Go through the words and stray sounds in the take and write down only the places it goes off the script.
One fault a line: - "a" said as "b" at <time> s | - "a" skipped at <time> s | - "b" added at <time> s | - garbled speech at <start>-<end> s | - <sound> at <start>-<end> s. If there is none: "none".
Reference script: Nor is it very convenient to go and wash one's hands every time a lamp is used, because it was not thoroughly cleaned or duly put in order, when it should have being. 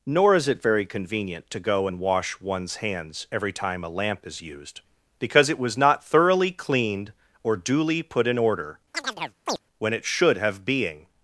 - chirp at 8.9-9.6 s